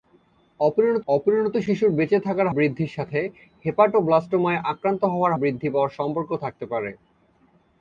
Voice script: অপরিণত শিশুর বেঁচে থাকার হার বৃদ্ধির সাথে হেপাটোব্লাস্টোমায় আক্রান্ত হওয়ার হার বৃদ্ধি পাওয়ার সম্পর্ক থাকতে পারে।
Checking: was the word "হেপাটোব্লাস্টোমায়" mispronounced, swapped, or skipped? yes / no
no